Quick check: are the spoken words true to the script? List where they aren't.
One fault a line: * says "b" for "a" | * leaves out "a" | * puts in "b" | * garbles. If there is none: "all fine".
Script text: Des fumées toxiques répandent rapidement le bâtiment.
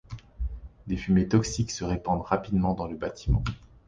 * puts in "se"
* puts in "dans"